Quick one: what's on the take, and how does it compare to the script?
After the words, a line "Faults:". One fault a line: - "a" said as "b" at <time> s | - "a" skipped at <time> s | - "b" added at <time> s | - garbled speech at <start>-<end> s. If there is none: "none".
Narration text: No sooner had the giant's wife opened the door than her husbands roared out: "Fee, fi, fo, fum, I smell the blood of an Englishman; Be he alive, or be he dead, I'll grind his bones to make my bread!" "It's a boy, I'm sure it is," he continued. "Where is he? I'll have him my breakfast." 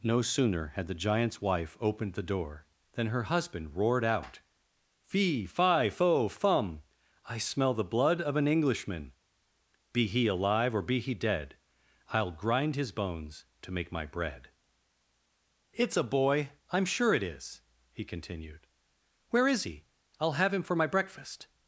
No sooner had the giant's wife opened the door than her husband roared out: "Fee, fi, fo, fum, I smell the blood of an Englishman; Be he alive, or be he dead, I'll grind his bones to make my bread!" "It's a boy, I'm sure it is," he continued. "Where is he? I'll have him for my breakfast."
Faults:
- "husbands" said as "husband" at 3.3 s
- "for" added at 20.6 s